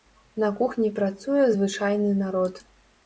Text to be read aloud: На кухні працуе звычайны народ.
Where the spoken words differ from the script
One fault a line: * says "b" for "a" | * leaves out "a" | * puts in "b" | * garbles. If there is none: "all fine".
all fine